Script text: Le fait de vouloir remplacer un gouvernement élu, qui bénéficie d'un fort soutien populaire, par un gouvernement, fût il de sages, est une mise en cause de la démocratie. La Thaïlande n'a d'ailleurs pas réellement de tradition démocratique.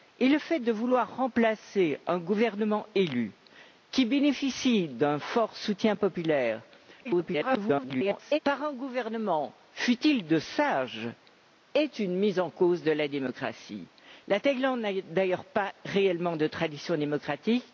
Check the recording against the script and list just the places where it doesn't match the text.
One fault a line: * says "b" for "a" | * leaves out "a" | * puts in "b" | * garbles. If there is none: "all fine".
* garbles